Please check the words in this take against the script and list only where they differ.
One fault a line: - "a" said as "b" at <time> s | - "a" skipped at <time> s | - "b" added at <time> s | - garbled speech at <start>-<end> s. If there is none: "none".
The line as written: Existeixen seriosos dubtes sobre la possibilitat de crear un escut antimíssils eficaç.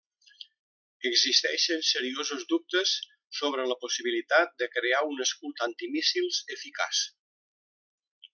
none